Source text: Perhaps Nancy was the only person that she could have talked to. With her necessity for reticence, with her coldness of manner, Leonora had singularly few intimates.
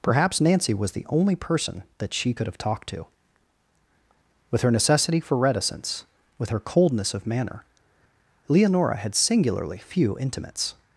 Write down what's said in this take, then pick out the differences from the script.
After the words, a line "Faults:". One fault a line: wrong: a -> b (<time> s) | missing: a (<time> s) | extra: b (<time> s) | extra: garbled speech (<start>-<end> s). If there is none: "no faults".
Perhaps Nancy was the only person that she could have talked to. With her necessity for reticence, with her coldness of manner, Leonora had singularly few intimates.
Faults:
no faults